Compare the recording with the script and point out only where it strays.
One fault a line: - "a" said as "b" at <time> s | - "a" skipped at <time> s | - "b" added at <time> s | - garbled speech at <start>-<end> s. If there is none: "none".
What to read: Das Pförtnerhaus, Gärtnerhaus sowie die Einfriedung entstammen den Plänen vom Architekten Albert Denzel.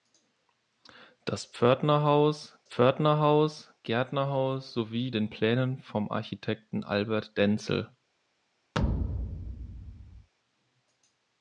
- "Pförtnerhaus" added at 2.6 s
- "die Einfriedung entstammen" skipped at 5.1 s